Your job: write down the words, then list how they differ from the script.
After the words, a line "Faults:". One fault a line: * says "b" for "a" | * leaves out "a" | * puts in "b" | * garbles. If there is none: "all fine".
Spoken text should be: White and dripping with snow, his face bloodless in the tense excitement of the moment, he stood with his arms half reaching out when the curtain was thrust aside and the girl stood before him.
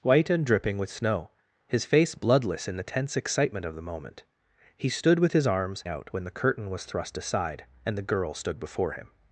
White and dripping with snow, his face bloodless in the tense excitement of the moment, he stood with his arms out when the curtain was thrust aside and the girl stood before him.
Faults:
* leaves out "half reaching"